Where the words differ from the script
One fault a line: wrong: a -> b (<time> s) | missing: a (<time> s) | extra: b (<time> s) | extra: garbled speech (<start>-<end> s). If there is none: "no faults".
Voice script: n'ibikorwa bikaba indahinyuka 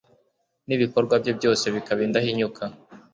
extra: bye byose (1.2 s)